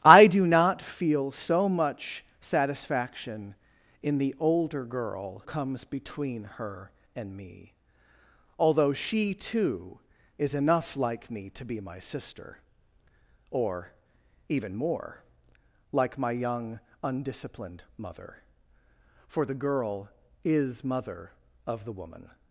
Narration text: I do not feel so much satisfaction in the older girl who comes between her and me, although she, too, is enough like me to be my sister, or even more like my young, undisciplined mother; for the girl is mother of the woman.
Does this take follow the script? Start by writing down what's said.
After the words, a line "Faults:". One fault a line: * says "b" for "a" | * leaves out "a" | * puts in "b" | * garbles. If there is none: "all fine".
I do not feel so much satisfaction in the older girl comes between her and me, although she, too, is enough like me to be my sister, or even more like my young, undisciplined mother; for the girl is mother of the woman.
Faults:
* leaves out "who"